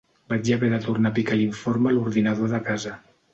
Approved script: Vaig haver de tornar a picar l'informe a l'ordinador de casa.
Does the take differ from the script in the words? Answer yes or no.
no